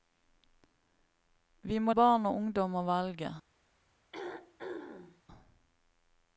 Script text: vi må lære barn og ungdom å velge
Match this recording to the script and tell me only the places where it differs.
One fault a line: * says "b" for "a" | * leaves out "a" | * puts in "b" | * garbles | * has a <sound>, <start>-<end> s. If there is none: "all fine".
* leaves out "lære"
* has a throat clearing, 4.1-5.2 s